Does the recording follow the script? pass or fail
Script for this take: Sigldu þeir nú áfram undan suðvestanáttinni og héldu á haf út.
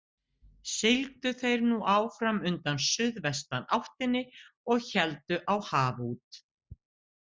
pass